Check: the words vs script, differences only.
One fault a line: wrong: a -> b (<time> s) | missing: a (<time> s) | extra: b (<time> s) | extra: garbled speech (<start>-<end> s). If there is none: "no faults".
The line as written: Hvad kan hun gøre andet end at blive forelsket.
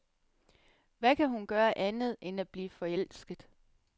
no faults